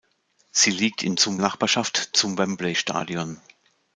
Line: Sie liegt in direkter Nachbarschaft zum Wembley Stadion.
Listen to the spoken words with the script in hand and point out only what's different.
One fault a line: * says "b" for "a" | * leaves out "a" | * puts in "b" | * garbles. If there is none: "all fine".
* says "zum" for "direkter"